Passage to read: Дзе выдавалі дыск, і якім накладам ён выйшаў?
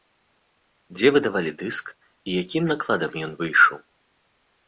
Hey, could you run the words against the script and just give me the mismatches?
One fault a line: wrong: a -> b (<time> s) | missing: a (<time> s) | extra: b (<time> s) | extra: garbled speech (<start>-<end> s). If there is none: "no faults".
no faults